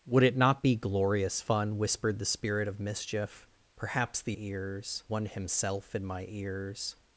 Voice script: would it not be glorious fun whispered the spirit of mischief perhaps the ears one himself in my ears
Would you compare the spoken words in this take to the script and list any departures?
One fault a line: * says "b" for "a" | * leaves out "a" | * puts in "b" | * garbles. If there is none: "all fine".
all fine